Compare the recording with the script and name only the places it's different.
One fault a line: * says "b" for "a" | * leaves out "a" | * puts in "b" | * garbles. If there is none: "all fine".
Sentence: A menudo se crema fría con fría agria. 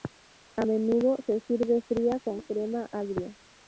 * says "sirve" for "crema"
* says "crema" for "fría"